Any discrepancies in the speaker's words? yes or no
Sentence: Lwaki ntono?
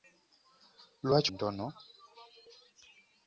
no